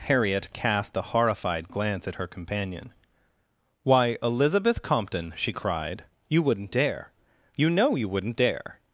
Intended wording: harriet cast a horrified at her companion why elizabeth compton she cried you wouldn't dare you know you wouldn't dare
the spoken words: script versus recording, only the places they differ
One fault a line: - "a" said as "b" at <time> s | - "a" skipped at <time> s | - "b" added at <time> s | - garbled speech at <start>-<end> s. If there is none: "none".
- "glance" added at 1.7 s